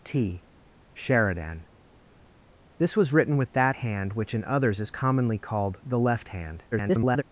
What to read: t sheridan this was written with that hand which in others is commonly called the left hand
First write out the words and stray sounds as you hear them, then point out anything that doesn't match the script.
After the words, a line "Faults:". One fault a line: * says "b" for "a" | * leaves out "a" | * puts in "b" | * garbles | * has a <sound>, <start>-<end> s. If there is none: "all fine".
t sheridan this was written with that hand which in others is commonly called the left hand [garbled]
Faults:
* garbles